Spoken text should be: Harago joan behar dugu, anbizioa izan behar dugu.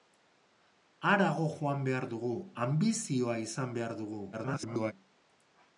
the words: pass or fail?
fail